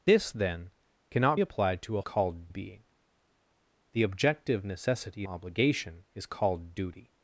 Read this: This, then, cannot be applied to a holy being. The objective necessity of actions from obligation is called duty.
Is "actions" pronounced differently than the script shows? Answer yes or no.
yes